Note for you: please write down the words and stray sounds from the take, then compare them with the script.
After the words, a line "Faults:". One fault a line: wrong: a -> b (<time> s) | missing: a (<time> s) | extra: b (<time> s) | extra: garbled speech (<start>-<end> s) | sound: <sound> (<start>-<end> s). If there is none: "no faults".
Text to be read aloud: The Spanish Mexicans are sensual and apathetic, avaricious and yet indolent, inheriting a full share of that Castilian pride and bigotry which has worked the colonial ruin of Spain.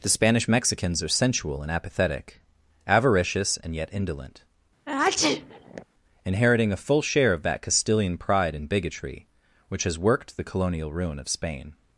The Spanish Mexicans are sensual and apathetic, avaricious and yet indolent, inheriting a full share of that Castilian pride and bigotry which has worked the colonial ruin of Spain.
Faults:
sound: sneeze (4.9-5.9 s)